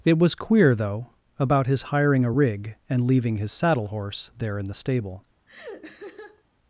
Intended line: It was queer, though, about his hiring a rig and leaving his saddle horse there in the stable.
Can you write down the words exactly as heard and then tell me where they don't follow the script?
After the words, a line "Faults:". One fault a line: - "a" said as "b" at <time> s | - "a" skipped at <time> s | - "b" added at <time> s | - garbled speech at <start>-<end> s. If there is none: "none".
It was queer, though, about his hiring a rig and leaving his saddle horse there in the stable.
Faults:
none